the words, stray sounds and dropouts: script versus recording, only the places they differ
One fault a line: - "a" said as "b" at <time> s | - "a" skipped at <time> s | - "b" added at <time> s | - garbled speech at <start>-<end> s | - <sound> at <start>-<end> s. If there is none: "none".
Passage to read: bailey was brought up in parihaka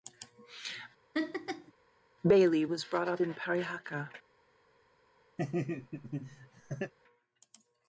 - laugh at 1.1-1.7 s
- laugh at 5.4-6.9 s